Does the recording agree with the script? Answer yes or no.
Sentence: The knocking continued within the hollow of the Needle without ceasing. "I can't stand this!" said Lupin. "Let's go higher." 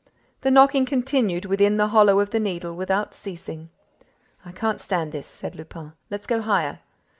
yes